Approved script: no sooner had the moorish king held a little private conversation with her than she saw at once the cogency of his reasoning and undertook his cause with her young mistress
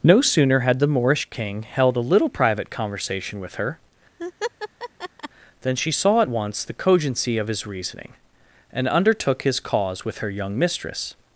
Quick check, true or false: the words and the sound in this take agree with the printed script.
false